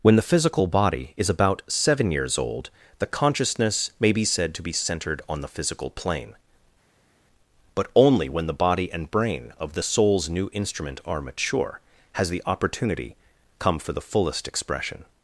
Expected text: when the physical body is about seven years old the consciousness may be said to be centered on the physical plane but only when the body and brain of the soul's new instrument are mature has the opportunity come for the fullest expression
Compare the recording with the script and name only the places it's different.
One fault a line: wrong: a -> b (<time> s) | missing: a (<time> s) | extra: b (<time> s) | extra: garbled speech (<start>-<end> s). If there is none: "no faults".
no faults